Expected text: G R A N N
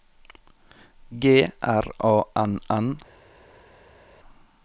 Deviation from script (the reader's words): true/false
false